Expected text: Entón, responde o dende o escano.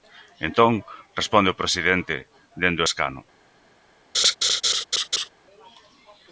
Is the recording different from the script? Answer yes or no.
yes